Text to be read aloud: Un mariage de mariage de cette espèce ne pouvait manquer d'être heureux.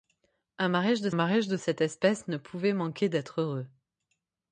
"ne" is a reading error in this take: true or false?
false